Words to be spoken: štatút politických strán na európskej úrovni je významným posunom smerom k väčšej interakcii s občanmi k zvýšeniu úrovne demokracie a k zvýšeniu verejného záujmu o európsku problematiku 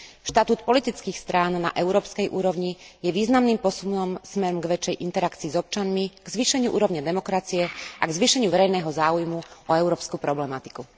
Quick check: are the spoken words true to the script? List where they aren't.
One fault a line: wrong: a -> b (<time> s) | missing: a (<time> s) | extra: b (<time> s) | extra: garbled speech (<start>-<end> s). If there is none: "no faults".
no faults